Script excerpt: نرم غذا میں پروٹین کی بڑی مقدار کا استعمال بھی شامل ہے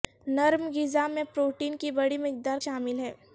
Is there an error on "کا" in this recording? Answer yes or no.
yes